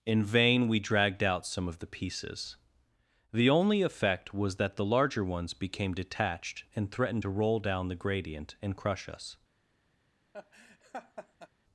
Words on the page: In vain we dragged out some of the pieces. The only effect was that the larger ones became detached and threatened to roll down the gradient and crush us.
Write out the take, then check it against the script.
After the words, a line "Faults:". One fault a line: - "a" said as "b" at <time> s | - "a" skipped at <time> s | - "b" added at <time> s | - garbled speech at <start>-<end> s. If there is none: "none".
In vain we dragged out some of the pieces. The only effect was that the larger ones became detached and threatened to roll down the gradient and crush us.
Faults:
none